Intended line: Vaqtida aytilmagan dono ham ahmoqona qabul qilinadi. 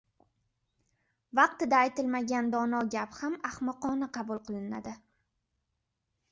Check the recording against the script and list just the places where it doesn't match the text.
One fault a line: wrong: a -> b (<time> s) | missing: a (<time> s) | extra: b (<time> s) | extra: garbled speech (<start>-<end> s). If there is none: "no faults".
extra: gap (2.9 s)